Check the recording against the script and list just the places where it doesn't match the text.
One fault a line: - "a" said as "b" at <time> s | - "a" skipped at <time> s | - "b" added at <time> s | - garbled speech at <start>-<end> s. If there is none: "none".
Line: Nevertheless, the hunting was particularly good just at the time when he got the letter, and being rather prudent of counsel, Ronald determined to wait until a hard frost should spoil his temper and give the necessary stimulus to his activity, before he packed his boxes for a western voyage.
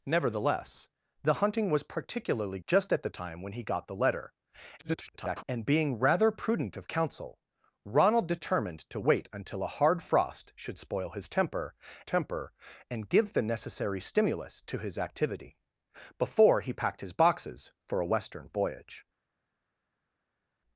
- "good" skipped at 2.6 s
- garbled speech at 4.8-5.4 s
- "temper" added at 12.0 s